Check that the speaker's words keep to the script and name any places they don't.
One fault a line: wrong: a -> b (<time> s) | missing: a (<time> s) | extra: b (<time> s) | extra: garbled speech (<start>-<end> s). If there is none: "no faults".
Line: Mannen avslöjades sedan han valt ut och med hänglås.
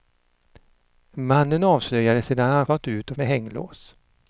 no faults